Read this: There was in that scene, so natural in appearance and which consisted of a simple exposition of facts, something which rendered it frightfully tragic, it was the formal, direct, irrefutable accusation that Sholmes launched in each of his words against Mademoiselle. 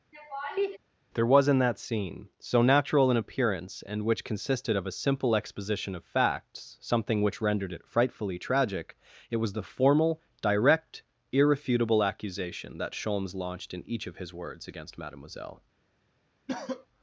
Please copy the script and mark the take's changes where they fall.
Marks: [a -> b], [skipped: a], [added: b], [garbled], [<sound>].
[laugh] There was in that scene, so natural in appearance and which consisted of a simple exposition of facts, something which rendered it frightfully tragic, it was the formal, direct, irrefutable accusation that Sholmes launched in each of his words against Mademoiselle. [cough]